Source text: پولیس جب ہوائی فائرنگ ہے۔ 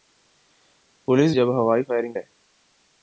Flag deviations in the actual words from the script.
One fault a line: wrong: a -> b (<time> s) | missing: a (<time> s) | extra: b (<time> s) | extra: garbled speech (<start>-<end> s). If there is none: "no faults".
no faults